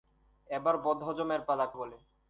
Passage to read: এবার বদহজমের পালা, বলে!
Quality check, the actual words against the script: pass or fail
pass